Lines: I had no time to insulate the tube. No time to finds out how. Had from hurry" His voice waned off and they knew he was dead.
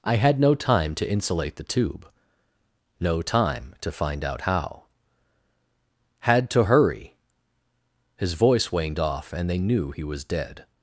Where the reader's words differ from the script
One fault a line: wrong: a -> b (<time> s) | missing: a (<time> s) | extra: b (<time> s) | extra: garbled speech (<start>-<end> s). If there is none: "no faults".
wrong: finds -> find (3.9 s)
wrong: from -> to (6.5 s)